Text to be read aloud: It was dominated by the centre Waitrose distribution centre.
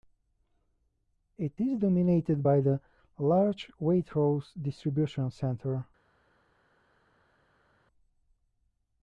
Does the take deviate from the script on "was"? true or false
true